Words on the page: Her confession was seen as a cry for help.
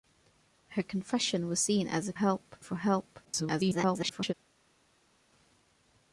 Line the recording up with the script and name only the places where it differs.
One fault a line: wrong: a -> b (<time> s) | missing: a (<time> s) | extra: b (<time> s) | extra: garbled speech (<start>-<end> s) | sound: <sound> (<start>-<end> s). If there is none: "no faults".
wrong: cry -> help (2.1 s)
extra: garbled speech (3.2-4.3 s)